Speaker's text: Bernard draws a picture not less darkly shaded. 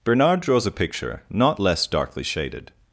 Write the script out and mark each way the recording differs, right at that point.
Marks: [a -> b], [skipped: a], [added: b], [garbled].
Bernard draws a picture not less darkly shaded.